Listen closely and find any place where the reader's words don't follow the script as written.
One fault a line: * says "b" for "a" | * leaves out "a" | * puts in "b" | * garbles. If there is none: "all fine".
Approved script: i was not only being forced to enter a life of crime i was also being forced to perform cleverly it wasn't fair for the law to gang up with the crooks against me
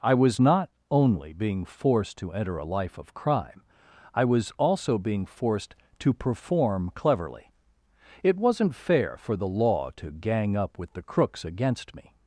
all fine